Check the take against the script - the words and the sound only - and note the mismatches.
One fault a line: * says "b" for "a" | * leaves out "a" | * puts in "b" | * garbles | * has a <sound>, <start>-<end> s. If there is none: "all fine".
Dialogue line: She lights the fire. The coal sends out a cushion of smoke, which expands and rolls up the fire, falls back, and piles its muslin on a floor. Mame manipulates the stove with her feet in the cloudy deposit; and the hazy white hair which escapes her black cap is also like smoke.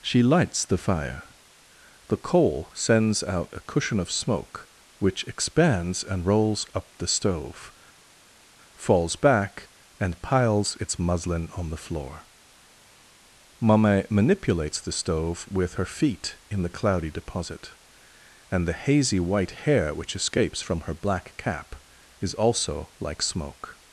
* says "stove" for "fire"
* says "the" for "a"
* puts in "from"